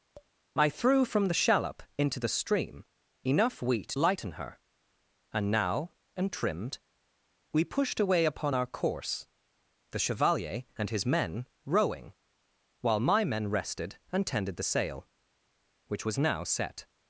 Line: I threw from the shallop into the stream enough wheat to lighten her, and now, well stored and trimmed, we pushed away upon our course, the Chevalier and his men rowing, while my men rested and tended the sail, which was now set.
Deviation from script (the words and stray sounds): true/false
true